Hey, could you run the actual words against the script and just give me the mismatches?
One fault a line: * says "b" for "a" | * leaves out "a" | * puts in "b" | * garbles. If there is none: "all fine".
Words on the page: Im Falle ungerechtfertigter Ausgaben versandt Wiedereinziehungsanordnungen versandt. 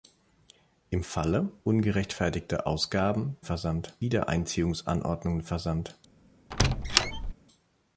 all fine